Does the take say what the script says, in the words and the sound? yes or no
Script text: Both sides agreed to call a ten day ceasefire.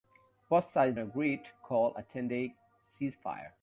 yes